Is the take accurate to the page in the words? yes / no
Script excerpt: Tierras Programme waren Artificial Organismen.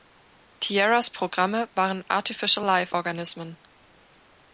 no